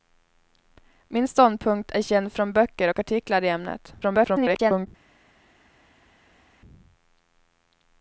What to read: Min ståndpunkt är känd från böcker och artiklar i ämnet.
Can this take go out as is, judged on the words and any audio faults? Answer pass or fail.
fail